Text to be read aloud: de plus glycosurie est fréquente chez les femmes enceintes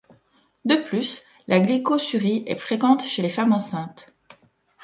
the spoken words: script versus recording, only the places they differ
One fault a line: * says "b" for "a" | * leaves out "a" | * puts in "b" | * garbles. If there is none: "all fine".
* puts in "la"